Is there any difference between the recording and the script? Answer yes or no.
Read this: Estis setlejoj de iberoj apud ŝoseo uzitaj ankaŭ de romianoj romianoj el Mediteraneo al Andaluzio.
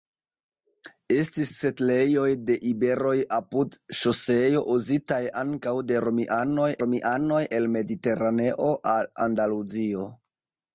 no